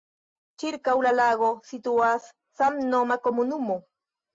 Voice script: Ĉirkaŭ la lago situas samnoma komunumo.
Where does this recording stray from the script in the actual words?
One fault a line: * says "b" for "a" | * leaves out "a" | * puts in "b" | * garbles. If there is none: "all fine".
all fine